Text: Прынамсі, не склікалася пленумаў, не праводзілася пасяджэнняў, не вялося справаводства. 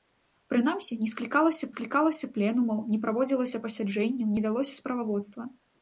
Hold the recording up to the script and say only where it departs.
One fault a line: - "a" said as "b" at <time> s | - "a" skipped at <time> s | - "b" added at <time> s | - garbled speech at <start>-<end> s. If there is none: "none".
- "склікалася" added at 1.7 s